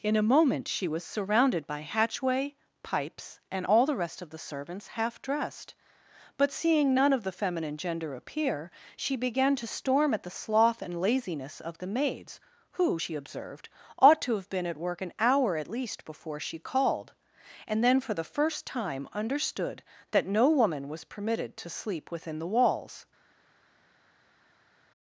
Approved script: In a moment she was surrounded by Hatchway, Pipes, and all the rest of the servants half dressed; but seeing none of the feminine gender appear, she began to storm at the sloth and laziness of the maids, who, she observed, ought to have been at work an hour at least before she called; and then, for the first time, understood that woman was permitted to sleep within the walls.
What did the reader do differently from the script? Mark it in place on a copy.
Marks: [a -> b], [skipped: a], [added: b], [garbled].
In a moment she was surrounded by Hatchway, Pipes, and all the rest of the servants half dressed; but seeing none of the feminine gender appear, she began to storm at the sloth and laziness of the maids, who, she observed, ought to have been at work an hour at least before she called; and then, for the first time, understood that [added: no] woman was permitted to sleep within the walls.